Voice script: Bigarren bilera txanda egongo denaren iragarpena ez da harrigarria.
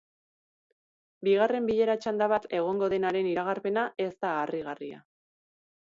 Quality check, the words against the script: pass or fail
fail